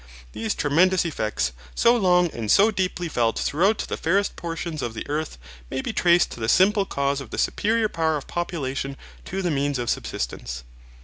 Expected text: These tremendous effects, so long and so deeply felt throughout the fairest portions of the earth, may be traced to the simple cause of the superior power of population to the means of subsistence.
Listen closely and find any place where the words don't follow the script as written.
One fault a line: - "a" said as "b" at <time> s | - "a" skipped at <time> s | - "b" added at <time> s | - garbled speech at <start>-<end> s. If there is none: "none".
none